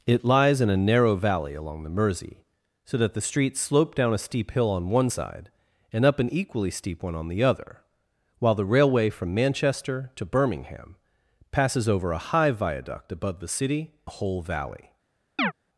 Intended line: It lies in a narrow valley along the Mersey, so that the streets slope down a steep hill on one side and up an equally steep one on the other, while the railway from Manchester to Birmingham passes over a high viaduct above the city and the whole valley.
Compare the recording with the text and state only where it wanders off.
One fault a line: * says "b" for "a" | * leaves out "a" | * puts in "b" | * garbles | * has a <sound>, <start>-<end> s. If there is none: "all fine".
* leaves out "and"
* has a chirp, 15.4-15.5 s